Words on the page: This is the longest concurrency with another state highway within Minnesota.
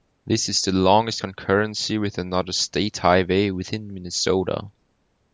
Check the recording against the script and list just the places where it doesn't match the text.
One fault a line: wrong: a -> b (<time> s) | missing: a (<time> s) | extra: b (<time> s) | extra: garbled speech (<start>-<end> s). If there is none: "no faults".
no faults